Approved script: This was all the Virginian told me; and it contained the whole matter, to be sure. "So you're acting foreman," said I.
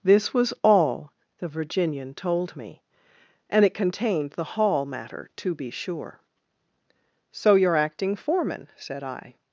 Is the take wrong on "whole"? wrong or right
wrong